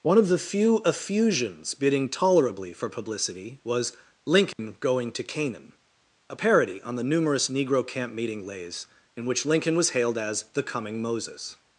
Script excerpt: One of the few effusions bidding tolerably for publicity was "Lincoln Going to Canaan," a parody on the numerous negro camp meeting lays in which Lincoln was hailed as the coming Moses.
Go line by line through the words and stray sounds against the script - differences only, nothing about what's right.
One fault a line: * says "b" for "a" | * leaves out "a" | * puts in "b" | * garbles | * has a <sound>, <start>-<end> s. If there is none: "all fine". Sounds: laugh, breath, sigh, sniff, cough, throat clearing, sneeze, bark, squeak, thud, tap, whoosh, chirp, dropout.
* has a dropout, 4.5-4.6 s